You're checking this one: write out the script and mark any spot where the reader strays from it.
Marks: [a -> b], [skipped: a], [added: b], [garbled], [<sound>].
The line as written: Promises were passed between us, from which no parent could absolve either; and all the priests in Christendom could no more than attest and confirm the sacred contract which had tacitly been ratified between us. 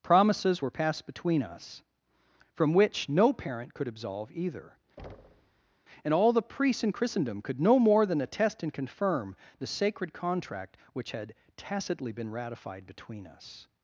Promises were passed between us, from which no parent could absolve either; [thud] and all the priests in Christendom could no more than attest and confirm the sacred contract which had tacitly been ratified between us.